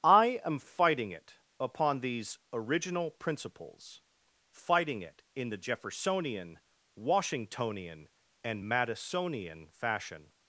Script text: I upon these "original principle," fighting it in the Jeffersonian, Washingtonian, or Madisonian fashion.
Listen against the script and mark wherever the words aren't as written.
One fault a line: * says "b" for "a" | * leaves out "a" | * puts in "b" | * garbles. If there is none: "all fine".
* puts in "am fighting it"
* says "principles" for "principle"
* says "and" for "or"